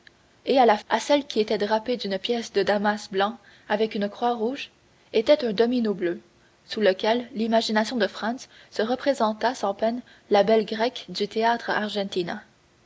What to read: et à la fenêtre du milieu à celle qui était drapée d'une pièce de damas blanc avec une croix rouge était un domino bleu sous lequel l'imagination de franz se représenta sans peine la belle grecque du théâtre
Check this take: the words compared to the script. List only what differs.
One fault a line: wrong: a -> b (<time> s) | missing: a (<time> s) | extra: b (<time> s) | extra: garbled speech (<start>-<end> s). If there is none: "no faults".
missing: fenêtre du milieu (0.8 s)